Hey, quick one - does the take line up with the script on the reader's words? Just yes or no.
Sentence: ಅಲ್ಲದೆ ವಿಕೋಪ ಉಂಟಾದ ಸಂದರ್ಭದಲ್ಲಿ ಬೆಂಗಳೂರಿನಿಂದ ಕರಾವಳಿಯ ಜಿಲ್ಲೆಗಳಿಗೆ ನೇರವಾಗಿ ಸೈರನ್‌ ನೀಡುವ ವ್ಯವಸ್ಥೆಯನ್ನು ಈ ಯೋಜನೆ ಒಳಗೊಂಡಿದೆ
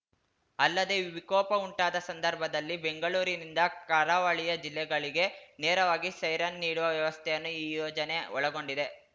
yes